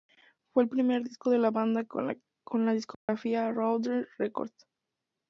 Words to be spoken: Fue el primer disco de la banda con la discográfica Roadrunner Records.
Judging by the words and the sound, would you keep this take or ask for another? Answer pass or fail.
fail